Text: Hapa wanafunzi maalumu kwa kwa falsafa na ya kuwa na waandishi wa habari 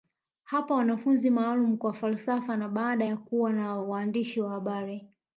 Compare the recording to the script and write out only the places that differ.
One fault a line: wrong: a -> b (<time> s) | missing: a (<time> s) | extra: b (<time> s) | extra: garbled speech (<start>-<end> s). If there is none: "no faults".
missing: kwa (1.9 s)
extra: baada (2.7 s)